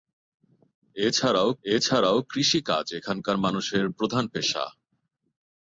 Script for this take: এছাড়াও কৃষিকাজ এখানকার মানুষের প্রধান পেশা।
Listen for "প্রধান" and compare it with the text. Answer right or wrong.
right